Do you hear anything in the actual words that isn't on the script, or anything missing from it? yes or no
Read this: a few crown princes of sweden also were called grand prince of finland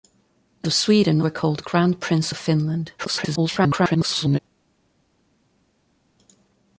yes